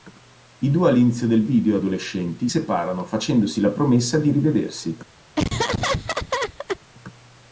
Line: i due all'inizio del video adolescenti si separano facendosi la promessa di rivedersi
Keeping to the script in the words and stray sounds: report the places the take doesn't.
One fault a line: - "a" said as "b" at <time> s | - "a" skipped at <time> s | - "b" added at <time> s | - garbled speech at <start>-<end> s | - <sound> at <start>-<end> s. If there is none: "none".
- "si" skipped at 2.5 s
- laugh at 5.4-6.8 s